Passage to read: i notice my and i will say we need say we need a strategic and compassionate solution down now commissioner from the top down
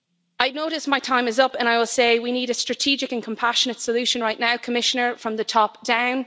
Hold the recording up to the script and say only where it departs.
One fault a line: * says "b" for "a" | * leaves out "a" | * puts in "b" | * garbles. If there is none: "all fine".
* puts in "time is up"
* leaves out "say we need"
* says "right" for "down"